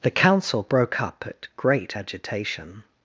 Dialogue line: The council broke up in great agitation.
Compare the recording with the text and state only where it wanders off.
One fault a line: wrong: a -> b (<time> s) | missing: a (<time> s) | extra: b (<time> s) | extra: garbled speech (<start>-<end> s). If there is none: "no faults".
wrong: in -> at (1.3 s)